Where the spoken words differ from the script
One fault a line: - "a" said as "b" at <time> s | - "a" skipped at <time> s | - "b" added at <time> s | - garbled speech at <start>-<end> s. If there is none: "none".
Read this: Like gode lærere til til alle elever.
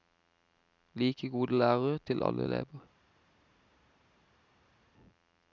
- "til" skipped at 2.2 s